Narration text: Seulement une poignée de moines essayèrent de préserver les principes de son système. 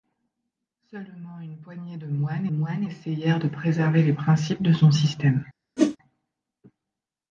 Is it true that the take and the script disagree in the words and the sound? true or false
true